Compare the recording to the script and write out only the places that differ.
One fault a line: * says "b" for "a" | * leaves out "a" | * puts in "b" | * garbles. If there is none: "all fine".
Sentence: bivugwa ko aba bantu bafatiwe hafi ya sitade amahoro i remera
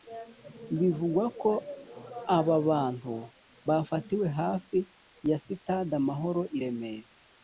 all fine